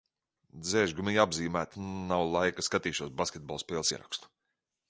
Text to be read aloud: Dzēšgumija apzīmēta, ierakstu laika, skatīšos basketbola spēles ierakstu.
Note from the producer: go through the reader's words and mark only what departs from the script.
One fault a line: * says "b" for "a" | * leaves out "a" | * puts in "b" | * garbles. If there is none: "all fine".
* says "nav" for "ierakstu"